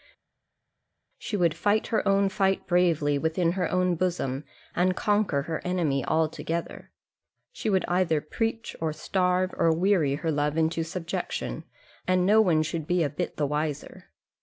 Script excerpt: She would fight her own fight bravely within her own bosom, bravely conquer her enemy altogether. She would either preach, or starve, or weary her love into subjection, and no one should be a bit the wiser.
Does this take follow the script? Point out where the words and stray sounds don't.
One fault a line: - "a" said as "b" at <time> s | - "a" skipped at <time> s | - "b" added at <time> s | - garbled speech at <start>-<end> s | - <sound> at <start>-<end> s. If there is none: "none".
- "bravely" said as "and" at 4.7 s